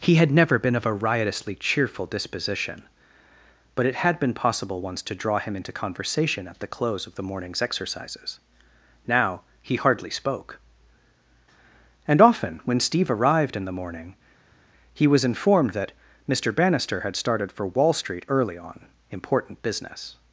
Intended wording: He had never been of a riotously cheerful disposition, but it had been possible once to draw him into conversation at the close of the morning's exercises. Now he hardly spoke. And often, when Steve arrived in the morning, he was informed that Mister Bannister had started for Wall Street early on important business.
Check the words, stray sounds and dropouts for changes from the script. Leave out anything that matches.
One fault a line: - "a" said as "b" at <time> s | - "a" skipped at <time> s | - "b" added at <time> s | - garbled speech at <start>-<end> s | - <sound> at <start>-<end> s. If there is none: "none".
none